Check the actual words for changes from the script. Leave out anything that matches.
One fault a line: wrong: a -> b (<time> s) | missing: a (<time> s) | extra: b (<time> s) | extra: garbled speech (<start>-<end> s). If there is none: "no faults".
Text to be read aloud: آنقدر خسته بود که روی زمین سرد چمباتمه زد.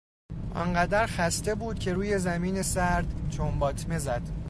no faults